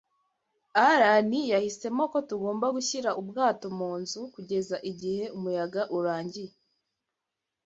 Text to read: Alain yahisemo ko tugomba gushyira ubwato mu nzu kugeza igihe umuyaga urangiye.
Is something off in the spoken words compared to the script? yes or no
no